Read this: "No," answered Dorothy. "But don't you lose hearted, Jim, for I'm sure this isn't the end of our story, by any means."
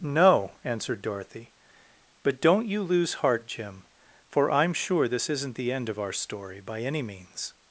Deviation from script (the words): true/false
true